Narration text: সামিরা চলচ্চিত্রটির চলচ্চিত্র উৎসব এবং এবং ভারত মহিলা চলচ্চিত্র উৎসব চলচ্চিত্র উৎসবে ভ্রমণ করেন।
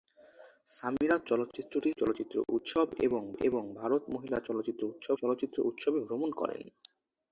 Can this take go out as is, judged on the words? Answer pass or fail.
pass